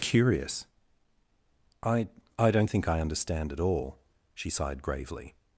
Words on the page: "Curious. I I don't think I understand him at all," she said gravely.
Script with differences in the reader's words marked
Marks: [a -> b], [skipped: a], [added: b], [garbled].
"Curious. I I don't think I understand [skipped: him] at all," she [said -> sighed] gravely.